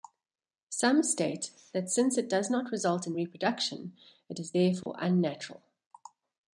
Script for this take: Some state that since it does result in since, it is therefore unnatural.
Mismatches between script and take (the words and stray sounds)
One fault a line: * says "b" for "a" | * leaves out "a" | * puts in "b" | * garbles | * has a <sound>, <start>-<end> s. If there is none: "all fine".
* puts in "not"
* says "reproduction" for "since"
* has a dropout, 4.8-4.9 s